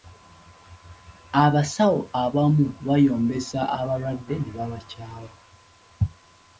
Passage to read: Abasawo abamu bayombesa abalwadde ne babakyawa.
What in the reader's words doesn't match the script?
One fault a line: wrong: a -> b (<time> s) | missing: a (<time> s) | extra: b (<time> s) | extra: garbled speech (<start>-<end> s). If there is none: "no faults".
no faults